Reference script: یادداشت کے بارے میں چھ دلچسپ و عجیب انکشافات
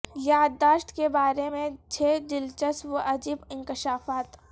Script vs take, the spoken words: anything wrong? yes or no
no